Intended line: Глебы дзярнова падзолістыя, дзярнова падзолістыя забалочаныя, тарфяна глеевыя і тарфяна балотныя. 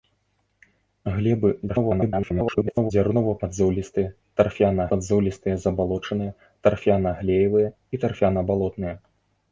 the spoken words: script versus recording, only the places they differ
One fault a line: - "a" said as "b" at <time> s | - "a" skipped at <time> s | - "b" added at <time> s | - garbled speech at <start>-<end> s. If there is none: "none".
- garbled speech at 1.7-2.9 s
- "дзярнова" said as "тарфяна" at 4.4 s